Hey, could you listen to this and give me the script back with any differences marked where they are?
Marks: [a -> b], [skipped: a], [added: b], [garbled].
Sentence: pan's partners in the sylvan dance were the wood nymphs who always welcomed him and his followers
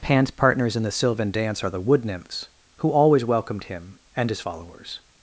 pan's partners in the sylvan dance [were -> are] the wood nymphs who always welcomed him and his followers